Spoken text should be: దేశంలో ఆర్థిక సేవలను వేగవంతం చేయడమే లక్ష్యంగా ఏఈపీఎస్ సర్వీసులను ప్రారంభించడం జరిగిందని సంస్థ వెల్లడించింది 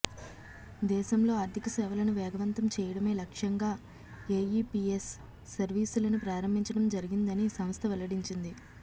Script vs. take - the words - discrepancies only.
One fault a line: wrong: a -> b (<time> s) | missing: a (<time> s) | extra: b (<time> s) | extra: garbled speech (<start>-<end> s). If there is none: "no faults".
no faults